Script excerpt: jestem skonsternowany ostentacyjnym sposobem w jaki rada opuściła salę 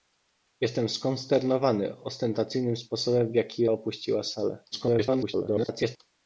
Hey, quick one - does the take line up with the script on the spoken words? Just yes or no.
no